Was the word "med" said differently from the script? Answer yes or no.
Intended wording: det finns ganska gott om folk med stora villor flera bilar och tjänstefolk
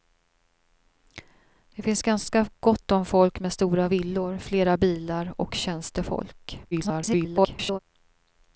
no